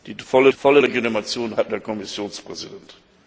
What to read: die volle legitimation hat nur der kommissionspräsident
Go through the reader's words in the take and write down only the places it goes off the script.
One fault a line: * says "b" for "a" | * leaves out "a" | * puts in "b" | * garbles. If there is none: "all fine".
* puts in "volle"
* leaves out "nur"